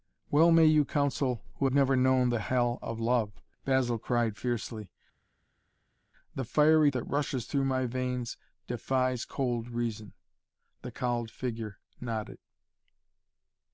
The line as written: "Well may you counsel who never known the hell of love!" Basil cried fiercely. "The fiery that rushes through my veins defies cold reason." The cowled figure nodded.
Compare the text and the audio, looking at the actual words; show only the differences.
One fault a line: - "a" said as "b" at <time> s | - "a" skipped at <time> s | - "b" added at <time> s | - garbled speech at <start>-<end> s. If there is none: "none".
none